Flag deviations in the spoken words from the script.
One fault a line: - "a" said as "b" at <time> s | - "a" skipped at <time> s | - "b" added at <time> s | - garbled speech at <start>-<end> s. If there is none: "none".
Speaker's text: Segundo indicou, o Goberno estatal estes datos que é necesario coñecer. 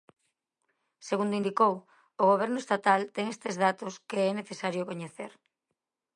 - "ten" added at 3.1 s